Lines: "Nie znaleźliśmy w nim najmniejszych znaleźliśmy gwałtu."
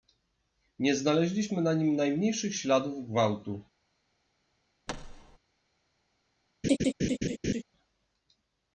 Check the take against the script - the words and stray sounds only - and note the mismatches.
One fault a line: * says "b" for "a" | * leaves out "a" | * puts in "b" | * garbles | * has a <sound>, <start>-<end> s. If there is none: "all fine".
* says "na" for "w"
* says "śladów" for "znaleźliśmy"
* has a thud, 4.9-5.4 s
* has a laugh, 6.6-7.6 s